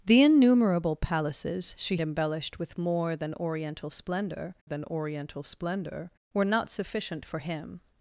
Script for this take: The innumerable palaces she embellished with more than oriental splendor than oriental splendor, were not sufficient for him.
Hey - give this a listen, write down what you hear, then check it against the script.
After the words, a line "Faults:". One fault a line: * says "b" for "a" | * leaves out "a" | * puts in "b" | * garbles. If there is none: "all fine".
The innumerable palaces she embellished with more than oriental splendor than oriental splendor, were not sufficient for him.
Faults:
all fine